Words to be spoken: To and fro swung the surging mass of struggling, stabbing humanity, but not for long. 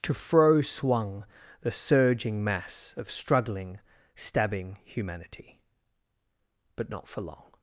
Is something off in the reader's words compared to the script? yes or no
yes